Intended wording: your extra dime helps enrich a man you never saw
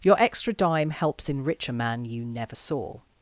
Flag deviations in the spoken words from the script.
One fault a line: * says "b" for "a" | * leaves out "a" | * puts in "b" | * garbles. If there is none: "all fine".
all fine